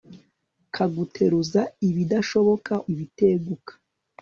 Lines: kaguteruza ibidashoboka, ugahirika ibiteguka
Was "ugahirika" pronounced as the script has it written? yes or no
no